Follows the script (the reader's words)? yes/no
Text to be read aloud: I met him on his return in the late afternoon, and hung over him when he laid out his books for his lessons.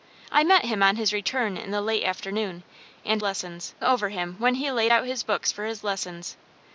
no